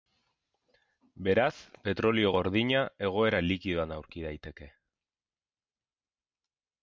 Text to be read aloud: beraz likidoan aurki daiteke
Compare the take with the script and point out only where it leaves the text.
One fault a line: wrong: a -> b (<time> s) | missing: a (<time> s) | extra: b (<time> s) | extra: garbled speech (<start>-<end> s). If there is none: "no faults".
extra: petrolio gordina egoera (1.9 s)